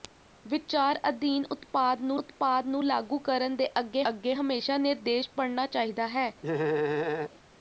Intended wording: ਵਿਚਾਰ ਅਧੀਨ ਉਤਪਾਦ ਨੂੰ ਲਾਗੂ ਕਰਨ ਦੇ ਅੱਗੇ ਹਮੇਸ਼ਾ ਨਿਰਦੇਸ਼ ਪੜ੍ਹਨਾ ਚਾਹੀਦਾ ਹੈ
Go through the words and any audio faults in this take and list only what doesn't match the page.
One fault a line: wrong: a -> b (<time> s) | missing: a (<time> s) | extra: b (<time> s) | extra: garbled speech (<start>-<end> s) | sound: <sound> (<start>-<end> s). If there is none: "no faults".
extra: ਉਤਪਾਦ ਨੂੰ (2.2 s)
extra: ਅੱਗੇ (4.1 s)
sound: laugh (6.4-7.3 s)